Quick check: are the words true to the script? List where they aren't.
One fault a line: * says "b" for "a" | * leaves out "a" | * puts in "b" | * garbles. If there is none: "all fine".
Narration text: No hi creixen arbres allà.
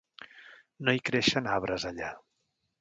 all fine